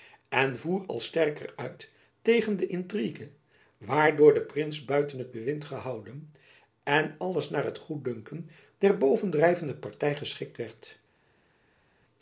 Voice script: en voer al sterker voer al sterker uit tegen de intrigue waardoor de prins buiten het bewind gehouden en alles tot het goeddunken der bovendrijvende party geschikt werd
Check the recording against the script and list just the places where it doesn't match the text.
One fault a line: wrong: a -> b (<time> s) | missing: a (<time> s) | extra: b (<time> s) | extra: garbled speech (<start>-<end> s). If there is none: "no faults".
missing: voer al sterker (1.5 s)
wrong: tot -> naar (7.5 s)